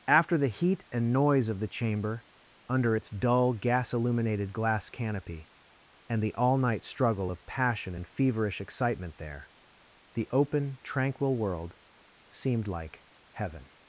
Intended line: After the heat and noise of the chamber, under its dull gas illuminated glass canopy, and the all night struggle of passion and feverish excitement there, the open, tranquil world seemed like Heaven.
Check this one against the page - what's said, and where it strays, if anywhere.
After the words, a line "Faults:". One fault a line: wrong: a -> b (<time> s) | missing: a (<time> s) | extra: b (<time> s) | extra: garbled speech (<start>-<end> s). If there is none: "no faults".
After the heat and noise of the chamber, under its dull gas illuminated glass canopy, and the all night struggle of passion and feverish excitement there, the open, tranquil world seemed like Heaven.
Faults:
no faults